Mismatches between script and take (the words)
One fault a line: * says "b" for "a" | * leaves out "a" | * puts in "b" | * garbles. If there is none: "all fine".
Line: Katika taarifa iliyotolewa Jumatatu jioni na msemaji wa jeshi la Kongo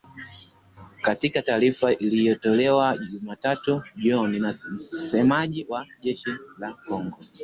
all fine